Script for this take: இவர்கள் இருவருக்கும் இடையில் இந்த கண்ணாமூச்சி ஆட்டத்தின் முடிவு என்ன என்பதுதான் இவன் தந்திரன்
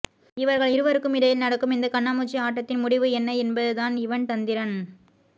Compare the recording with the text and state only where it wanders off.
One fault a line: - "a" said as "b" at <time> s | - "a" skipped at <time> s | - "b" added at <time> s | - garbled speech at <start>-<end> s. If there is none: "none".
- "நடக்கும்" added at 1.4 s